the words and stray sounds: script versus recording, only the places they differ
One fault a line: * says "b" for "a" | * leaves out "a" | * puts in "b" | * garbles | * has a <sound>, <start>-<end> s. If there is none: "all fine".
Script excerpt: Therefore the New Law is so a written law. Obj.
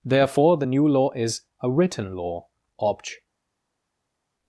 * leaves out "so"